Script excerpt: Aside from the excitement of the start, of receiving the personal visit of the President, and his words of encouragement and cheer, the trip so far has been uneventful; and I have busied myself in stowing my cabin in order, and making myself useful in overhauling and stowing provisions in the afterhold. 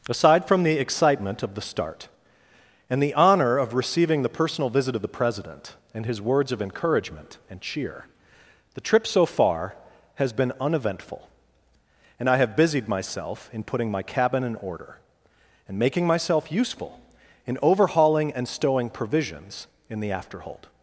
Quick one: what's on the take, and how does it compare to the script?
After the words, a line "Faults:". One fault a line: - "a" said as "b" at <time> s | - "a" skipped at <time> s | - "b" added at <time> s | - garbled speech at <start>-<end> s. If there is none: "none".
Aside from the excitement of the start, and the honor of receiving the personal visit of the President, and his words of encouragement and cheer, the trip so far has been uneventful; and I have busied myself in putting my cabin in order, and making myself useful in overhauling and stowing provisions in the afterhold.
Faults:
- "and the honor" added at 2.9 s
- "stowing" said as "putting" at 13.6 s